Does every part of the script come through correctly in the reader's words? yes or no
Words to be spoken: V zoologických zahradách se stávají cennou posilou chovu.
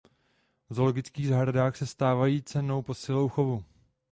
yes